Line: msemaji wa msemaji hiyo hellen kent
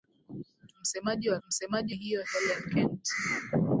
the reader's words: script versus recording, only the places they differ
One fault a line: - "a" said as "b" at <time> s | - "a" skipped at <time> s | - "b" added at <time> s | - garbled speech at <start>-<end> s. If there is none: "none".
none